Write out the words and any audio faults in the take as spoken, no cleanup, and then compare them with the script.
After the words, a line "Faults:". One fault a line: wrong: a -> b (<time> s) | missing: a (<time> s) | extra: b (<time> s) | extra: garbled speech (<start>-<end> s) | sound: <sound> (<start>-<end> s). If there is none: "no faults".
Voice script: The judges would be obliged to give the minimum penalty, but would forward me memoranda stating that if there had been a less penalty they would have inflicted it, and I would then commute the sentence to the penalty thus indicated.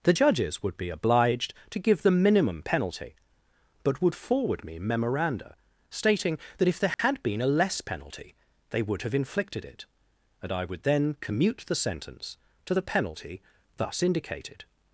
The judges would be obliged to give the minimum penalty, but would forward me memoranda stating that if there had been a less penalty they would have inflicted it, and I would then commute the sentence to the penalty thus indicated.
Faults:
sound: dropout (6.9-7.0 s)